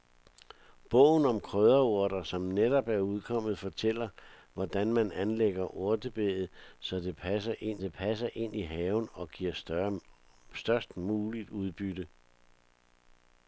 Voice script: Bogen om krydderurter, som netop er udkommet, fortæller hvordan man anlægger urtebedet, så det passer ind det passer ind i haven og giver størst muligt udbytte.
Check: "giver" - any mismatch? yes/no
no